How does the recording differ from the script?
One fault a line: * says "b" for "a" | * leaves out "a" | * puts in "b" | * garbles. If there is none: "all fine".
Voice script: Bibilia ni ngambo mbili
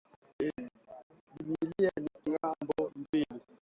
all fine